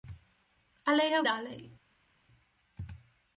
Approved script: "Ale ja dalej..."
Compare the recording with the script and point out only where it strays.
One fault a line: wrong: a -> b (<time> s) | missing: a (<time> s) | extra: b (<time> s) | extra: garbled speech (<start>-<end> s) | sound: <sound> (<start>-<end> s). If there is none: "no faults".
no faults